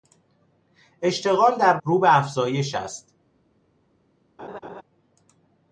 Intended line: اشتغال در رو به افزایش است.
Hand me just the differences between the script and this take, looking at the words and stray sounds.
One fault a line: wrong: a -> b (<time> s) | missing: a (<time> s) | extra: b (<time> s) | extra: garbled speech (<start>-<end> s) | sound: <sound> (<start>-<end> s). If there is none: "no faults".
sound: laugh (4.4-4.8 s)